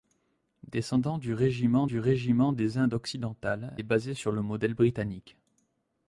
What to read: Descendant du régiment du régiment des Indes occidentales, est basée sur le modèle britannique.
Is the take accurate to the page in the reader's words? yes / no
yes